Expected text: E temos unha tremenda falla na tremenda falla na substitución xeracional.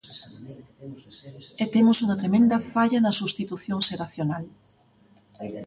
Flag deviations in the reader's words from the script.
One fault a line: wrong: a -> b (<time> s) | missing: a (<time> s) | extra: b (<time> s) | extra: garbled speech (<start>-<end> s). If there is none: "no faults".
missing: tremenda falla na (3.2 s)